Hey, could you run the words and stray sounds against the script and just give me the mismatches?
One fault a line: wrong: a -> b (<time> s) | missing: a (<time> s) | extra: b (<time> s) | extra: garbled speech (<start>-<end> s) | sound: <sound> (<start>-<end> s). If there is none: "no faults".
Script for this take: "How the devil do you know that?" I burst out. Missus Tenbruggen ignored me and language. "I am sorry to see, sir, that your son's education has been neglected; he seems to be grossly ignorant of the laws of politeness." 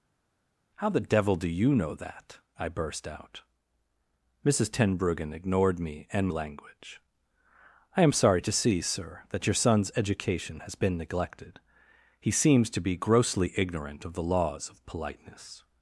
no faults